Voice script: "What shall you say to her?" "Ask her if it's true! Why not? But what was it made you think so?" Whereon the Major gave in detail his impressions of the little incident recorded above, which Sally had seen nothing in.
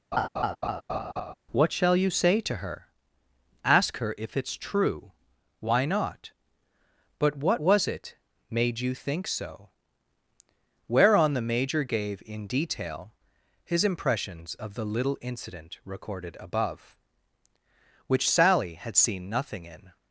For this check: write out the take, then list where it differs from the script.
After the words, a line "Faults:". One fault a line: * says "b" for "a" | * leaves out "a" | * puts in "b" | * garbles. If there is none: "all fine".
"What shall you say to her?" "Ask her if it's true! Why not? But what was it made you think so?" Whereon the Major gave in detail his impressions of the little incident recorded above, which Sally had seen nothing in.
Faults:
all fine